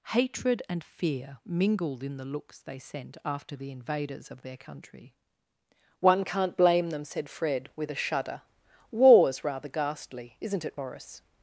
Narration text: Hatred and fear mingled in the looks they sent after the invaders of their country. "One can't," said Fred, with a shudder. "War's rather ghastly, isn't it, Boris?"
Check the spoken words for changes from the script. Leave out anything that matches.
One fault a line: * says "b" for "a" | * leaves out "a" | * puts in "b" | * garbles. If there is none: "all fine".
* puts in "blame them"